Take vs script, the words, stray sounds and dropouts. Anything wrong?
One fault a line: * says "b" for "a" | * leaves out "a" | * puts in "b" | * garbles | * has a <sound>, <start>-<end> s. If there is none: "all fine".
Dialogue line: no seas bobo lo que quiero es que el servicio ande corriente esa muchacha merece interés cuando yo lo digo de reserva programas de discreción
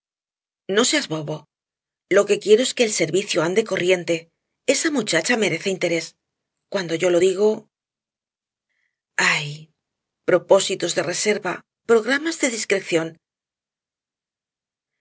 * puts in "ay propósitos"